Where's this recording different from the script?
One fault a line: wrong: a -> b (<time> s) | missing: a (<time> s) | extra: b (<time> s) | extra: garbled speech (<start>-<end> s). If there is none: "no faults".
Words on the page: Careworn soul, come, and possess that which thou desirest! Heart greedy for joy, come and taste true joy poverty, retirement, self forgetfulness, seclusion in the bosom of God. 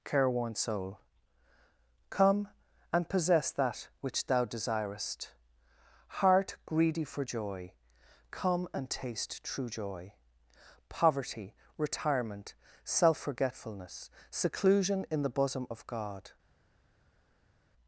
no faults